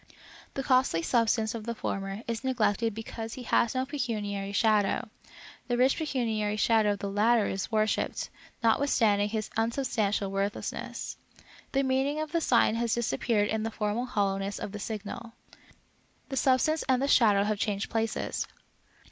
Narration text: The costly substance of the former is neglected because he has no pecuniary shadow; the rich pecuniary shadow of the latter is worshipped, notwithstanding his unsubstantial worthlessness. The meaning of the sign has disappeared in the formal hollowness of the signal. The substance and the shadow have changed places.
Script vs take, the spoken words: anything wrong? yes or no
no